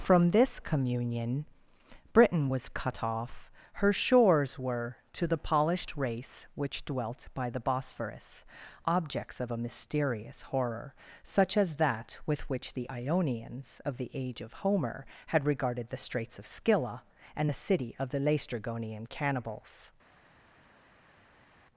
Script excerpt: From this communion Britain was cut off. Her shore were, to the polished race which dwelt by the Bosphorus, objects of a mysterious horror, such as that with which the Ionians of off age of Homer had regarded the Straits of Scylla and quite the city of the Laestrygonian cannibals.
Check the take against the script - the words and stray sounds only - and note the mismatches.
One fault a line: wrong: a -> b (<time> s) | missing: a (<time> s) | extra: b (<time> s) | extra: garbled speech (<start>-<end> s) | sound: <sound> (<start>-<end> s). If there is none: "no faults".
wrong: shore -> shores (3.9 s)
wrong: off -> the (14.0 s)
missing: quite (17.5 s)